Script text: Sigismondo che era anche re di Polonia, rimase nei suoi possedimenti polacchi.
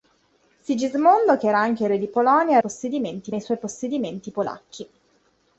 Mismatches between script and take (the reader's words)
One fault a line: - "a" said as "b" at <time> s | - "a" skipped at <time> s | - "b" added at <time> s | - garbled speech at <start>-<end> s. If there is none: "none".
- "rimase" said as "possedimenti" at 2.6 s